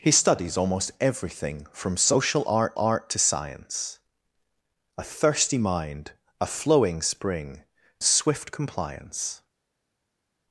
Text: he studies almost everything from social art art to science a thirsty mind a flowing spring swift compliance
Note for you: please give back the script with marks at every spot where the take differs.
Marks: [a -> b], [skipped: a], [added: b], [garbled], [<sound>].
he studies almost everything from social art art to science a thirsty mind a flowing spring swift compliance